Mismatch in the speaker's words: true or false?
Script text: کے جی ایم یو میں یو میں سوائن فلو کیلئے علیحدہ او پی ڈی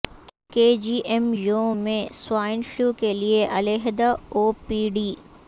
true